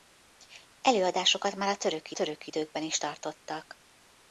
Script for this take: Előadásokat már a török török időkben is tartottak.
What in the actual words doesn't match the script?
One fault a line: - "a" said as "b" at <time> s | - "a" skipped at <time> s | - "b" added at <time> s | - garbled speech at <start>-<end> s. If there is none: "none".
none